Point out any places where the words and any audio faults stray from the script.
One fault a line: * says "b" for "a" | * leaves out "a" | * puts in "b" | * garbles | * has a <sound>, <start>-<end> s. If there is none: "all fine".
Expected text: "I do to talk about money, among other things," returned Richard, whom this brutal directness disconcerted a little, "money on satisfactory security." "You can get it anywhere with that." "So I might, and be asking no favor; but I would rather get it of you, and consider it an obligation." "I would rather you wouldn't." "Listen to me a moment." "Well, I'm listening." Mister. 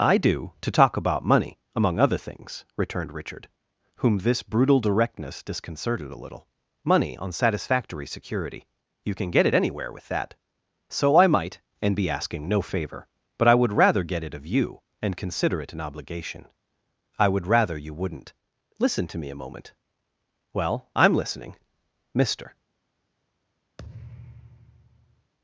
* has a thud, 23.8-25.3 s